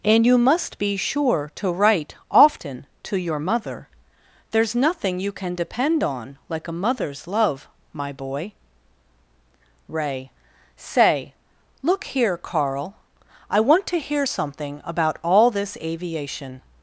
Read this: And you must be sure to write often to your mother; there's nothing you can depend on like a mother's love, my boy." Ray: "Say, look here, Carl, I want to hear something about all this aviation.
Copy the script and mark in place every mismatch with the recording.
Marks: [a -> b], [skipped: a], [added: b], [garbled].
And you must be sure to write often to your mother; there's nothing you can depend on like a mother's love, my boy." Ray: "Say, look here, Carl, I want to hear something about all this aviation.